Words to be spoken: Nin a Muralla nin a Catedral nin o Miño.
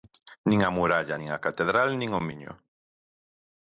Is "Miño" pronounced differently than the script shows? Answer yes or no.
no